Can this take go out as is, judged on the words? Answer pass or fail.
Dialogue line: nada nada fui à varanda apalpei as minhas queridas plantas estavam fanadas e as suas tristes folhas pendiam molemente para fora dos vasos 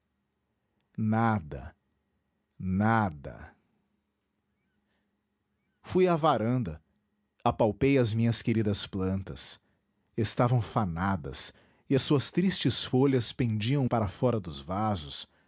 fail